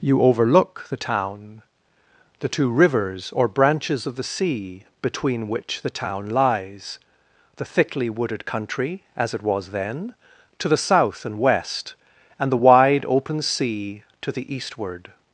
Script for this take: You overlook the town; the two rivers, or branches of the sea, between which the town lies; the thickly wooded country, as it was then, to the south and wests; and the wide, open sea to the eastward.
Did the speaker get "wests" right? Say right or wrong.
wrong